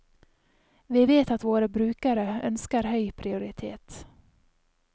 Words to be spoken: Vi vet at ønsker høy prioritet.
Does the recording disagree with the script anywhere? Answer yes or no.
yes